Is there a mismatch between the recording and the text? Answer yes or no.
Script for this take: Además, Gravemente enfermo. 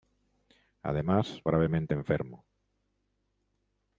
no